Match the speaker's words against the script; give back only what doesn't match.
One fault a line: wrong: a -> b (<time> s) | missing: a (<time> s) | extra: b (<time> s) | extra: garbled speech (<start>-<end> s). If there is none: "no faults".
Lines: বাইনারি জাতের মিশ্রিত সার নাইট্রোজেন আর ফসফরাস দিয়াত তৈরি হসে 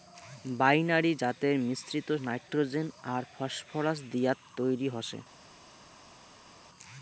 missing: সার (2.1 s)